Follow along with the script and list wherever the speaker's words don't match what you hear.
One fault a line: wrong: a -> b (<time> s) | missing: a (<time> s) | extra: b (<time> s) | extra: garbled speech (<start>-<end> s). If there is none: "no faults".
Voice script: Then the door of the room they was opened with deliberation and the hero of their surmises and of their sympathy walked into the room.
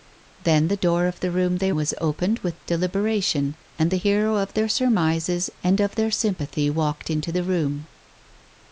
no faults